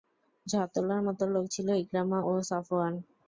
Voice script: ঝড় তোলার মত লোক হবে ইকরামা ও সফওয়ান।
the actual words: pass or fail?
fail